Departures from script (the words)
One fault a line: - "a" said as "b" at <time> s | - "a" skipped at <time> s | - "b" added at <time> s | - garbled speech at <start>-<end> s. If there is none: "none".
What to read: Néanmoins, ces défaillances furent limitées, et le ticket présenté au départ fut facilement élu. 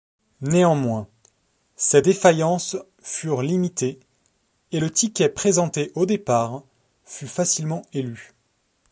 none